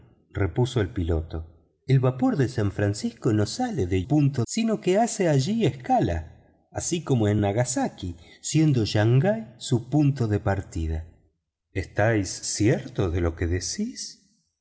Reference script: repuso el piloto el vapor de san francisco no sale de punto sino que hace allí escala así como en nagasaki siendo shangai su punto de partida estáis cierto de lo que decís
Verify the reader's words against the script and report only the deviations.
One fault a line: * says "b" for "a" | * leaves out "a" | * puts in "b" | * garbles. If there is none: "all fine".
all fine